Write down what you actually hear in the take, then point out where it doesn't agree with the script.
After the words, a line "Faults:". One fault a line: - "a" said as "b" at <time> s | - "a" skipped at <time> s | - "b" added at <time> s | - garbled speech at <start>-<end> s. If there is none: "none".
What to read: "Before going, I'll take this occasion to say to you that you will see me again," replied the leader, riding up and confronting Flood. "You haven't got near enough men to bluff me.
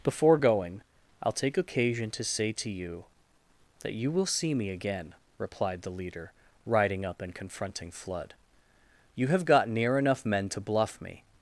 "Before going, I'll take occasion to say to you that you will see me again," replied the leader, riding up and confronting Flood. "You have got near enough men to bluff me.
Faults:
- "this" skipped at 1.6 s
- "haven't" said as "have" at 9.3 s